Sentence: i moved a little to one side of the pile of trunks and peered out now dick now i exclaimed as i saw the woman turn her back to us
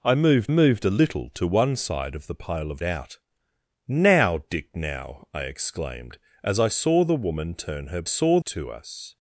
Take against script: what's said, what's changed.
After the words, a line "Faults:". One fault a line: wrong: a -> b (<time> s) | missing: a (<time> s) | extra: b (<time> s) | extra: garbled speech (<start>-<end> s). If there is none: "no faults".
i moved moved a little to one side of the pile of out now dick now i exclaimed as i saw the woman turn her saw to us
Faults:
extra: moved (0.5 s)
missing: trunks and peered (2.8 s)
wrong: back -> saw (8.0 s)